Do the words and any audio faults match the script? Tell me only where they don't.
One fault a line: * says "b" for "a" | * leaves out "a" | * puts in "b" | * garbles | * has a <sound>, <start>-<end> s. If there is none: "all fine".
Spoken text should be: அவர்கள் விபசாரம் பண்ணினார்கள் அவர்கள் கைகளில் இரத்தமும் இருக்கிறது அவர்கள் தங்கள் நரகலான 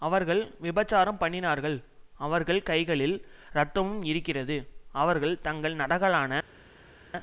all fine